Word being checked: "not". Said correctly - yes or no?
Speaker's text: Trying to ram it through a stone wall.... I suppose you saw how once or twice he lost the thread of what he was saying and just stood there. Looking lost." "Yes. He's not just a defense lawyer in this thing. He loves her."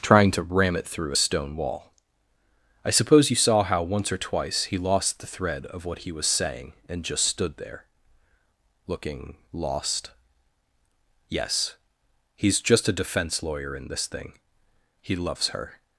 no